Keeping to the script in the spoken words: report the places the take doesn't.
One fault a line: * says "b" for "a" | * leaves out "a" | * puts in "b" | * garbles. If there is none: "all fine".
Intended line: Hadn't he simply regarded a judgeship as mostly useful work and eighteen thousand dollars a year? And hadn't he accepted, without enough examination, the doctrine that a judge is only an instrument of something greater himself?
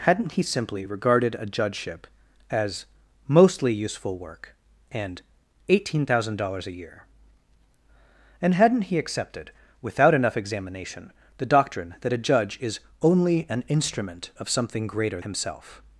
all fine